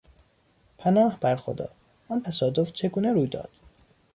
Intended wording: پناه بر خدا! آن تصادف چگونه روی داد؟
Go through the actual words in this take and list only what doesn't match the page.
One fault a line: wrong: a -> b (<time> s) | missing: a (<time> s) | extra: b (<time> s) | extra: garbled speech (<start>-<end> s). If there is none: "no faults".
no faults